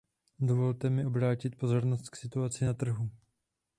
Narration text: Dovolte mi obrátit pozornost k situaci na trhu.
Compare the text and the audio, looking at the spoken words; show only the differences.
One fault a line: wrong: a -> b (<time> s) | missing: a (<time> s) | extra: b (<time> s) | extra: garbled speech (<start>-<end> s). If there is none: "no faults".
no faults